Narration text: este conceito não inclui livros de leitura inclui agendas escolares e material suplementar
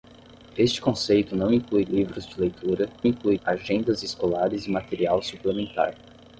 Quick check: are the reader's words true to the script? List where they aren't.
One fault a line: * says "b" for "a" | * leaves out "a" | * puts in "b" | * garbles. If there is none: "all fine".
all fine